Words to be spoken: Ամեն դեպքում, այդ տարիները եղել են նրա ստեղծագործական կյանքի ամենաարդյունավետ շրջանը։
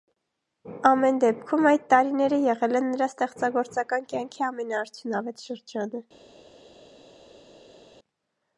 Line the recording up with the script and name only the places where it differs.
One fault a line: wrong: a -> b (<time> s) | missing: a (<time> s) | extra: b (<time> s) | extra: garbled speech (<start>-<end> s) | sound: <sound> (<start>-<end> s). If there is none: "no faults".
no faults